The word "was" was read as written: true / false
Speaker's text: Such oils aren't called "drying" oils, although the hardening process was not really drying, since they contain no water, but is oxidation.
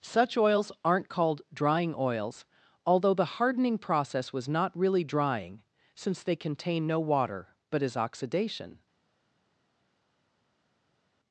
true